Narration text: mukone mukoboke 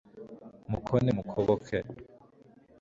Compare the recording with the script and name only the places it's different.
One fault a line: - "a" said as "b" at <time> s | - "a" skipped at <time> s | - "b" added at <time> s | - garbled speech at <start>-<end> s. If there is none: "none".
none